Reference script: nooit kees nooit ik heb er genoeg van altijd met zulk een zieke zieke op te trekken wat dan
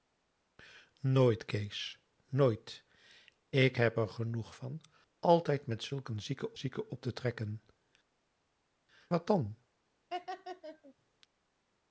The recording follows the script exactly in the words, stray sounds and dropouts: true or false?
false